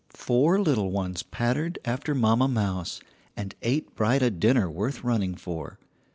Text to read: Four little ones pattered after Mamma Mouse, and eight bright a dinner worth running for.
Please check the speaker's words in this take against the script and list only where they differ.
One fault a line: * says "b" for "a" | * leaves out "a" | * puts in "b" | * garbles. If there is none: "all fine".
all fine